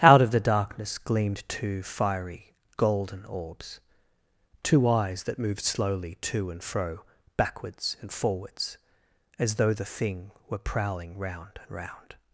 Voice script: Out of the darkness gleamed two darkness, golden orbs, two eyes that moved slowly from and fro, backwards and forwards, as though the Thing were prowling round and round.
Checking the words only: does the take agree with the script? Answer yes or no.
no